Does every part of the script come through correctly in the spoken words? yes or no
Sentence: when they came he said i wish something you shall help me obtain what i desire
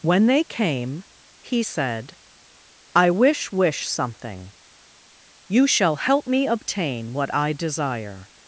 no